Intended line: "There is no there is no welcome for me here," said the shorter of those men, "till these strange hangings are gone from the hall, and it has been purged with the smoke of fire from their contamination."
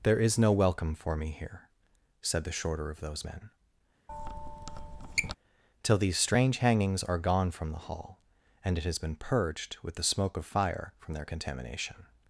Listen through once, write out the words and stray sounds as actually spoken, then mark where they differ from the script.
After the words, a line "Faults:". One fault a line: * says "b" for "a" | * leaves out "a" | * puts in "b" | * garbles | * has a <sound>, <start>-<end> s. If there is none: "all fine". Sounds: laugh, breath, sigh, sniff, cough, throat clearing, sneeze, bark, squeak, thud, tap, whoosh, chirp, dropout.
"There is no welcome for me here," said the shorter of those men, "till these strange hangings are gone from the hall, and it has been purged with the smoke of fire from their contamination."
Faults:
* leaves out "there is no"
* has a squeak, 4.1-5.4 s